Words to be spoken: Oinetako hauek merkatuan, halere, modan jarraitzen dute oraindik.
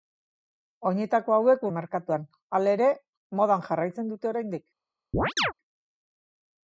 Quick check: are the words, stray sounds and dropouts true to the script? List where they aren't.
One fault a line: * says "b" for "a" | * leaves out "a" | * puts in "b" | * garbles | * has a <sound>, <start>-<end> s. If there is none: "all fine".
* has a chirp, 5.1-5.5 s